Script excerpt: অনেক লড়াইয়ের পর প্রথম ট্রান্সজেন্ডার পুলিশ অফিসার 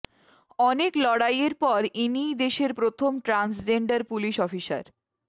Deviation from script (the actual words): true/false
true